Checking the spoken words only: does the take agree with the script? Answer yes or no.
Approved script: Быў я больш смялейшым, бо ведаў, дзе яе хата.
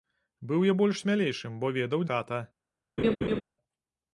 no